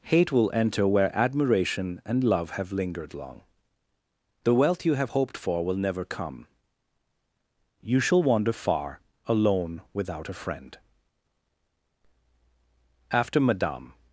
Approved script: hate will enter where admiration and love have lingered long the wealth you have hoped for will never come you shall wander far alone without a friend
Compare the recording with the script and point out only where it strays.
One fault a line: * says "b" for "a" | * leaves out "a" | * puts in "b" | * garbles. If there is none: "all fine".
* puts in "after madame"